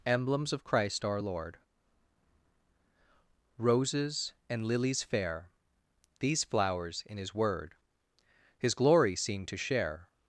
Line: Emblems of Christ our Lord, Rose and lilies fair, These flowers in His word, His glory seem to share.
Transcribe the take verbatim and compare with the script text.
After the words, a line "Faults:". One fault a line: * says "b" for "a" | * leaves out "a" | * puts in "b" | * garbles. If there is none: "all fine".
Emblems of Christ our Lord, Roses and lilies fair, These flowers in His word, His glory seem to share.
Faults:
* says "Roses" for "Rose"